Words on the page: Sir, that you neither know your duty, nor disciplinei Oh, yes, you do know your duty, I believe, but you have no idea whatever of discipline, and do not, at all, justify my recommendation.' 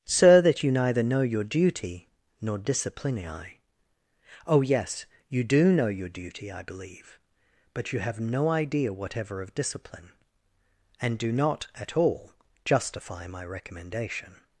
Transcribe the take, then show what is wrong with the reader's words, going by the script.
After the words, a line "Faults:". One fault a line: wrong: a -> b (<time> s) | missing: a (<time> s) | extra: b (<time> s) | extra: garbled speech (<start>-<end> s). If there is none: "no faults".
Sir, that you neither know your duty, nor disciplinei Oh, yes, you do know your duty, I believe, but you have no idea whatever of discipline, and do not, at all, justify my recommendation.'
Faults:
no faults